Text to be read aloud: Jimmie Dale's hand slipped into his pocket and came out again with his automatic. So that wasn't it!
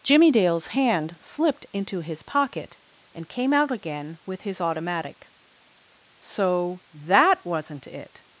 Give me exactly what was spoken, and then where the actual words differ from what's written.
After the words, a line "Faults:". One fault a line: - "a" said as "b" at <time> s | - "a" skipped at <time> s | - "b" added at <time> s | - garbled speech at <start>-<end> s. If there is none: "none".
Jimmie Dale's hand slipped into his pocket and came out again with his automatic. So that wasn't it!
Faults:
none